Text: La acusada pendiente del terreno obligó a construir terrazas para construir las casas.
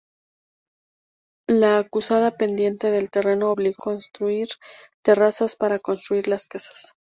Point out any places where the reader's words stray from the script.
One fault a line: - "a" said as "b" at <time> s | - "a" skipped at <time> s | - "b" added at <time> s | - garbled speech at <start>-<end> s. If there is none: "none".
- "a" skipped at 3.8 s